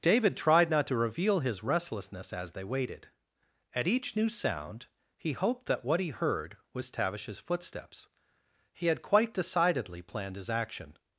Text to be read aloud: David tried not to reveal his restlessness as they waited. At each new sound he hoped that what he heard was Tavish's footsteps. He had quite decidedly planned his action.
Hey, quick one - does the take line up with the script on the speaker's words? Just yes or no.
yes